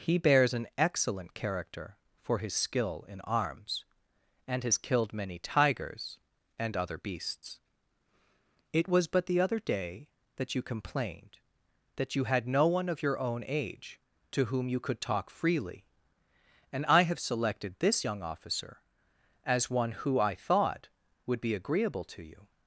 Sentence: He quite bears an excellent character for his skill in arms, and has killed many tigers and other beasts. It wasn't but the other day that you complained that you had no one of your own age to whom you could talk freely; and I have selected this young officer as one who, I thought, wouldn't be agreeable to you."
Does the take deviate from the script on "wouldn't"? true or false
true